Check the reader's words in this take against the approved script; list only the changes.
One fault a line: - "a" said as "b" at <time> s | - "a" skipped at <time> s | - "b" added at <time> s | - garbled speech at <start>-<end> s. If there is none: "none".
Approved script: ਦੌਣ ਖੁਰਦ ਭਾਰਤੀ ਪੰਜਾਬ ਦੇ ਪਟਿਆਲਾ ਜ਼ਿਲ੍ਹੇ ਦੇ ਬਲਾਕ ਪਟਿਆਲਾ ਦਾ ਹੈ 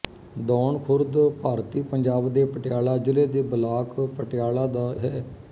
none